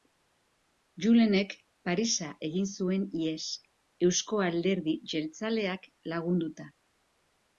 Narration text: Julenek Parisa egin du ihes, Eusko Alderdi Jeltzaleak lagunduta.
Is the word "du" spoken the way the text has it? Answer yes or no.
no